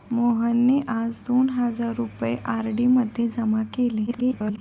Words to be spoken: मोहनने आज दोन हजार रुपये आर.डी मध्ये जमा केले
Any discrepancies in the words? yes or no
yes